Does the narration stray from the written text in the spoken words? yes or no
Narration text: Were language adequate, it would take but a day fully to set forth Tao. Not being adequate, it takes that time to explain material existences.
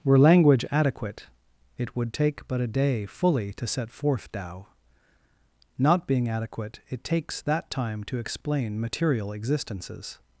no